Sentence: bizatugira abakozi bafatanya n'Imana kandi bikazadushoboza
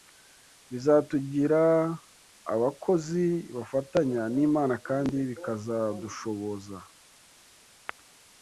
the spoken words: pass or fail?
pass